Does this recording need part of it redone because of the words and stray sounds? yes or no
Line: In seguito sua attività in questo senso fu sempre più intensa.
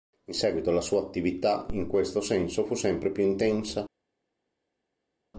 yes